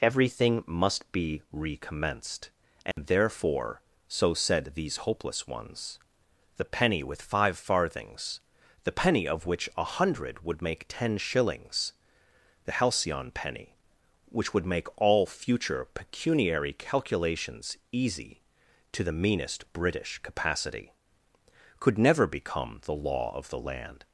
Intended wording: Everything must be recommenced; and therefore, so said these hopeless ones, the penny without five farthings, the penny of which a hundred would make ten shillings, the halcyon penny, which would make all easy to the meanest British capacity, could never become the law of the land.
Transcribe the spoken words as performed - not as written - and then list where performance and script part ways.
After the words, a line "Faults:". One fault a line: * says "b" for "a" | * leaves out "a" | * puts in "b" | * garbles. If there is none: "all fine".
Everything must be recommenced; and therefore, so said these hopeless ones, the penny with five farthings, the penny of which a hundred would make ten shillings, the halcyon penny, which would make all future pecuniary calculations easy to the meanest British capacity, could never become the law of the land.
Faults:
* says "with" for "without"
* puts in "future pecuniary calculations"